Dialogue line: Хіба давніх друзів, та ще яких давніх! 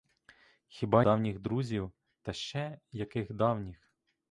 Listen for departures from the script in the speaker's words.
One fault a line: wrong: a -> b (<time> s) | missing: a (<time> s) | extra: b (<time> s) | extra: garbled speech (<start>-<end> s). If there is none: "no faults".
no faults